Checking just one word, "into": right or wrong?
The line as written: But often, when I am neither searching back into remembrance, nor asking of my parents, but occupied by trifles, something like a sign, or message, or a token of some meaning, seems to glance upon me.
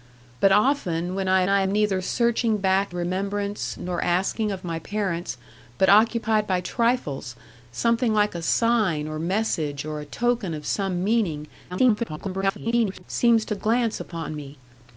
wrong